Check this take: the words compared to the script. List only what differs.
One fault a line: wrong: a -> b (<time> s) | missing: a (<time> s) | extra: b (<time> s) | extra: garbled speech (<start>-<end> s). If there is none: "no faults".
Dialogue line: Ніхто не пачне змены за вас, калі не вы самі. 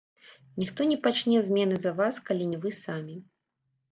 no faults